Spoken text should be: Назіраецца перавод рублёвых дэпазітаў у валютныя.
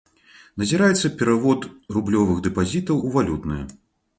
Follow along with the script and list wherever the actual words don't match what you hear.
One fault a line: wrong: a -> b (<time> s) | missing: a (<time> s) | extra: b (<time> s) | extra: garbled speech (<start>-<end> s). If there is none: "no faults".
no faults